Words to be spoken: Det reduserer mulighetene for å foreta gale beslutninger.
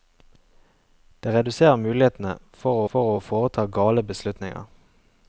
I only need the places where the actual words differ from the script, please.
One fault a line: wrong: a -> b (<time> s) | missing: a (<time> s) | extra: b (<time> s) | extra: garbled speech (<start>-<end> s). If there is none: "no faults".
extra: for (2.9 s)